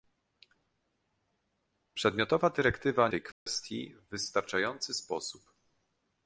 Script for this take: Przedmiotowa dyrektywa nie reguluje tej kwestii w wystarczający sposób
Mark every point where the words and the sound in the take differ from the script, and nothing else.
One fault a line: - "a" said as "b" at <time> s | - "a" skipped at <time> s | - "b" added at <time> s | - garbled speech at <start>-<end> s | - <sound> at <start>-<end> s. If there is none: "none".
- "nie reguluje" skipped at 3.1 s
- dropout at 3.3-3.5 s